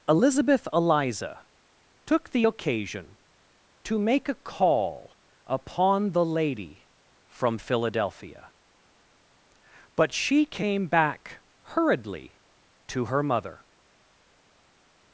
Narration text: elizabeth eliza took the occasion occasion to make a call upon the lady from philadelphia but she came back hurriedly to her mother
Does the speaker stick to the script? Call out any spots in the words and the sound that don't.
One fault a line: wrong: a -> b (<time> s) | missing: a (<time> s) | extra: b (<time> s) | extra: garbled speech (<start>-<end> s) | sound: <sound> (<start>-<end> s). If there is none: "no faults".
missing: occasion (3.2 s)